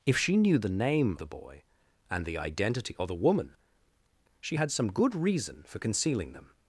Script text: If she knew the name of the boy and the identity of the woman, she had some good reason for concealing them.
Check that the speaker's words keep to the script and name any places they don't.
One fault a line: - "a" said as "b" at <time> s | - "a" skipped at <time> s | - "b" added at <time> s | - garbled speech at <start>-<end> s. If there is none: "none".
- "of" skipped at 1.2 s